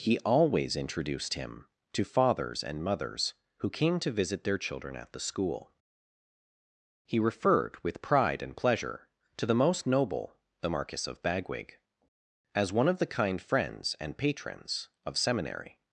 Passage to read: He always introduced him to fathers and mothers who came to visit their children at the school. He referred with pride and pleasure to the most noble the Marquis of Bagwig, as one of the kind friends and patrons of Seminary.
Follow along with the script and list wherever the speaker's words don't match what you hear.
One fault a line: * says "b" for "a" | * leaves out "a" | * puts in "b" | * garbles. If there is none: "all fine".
all fine